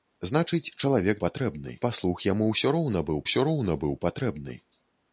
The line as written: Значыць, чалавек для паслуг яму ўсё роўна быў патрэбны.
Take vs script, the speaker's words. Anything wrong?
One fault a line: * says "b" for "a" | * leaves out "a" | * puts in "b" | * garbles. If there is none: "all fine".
* says "патрэбны" for "для"
* puts in "ўсё роўна быў"